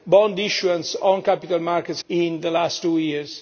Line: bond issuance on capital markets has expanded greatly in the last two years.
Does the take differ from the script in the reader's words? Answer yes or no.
yes